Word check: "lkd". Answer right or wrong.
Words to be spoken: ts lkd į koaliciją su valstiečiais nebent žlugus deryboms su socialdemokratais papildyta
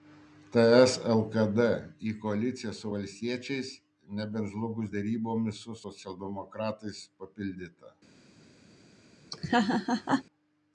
right